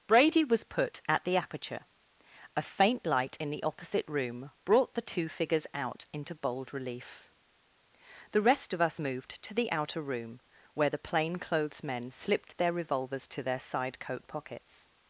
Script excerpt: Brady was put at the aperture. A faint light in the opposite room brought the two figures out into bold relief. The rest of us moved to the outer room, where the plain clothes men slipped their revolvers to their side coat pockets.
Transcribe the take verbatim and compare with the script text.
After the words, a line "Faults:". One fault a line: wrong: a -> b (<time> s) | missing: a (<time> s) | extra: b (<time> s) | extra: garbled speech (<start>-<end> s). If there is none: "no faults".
Brady was put at the aperture. A faint light in the opposite room brought the two figures out into bold relief. The rest of us moved to the outer room, where the plain clothes men slipped their revolvers to their side coat pockets.
Faults:
no faults